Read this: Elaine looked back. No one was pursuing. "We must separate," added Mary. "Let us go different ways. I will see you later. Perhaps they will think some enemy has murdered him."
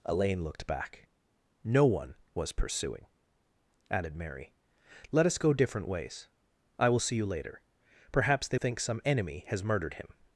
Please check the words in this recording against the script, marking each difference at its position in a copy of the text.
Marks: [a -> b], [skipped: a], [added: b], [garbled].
Elaine looked back. No one was pursuing. [skipped: "We must separate,"] added Mary. "Let us go different ways. I will see you later. Perhaps they [skipped: will] think some enemy has murdered him."